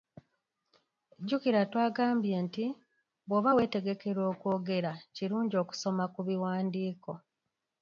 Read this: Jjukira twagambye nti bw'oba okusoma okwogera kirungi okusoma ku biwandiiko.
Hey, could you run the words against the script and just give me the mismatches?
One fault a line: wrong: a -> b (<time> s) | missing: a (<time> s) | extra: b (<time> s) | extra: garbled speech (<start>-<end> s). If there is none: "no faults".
wrong: okusoma -> weetegekera (3.6 s)